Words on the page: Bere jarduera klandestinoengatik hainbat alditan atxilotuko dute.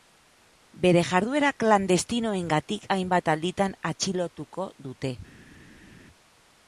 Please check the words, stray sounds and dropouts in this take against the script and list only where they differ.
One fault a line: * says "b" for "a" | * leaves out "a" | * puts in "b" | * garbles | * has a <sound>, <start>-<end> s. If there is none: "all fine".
all fine